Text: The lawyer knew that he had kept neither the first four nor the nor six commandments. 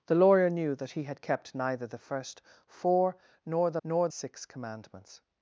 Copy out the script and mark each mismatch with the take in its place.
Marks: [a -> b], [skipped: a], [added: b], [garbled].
The lawyer knew that he had kept neither the first four nor the nor six commandments.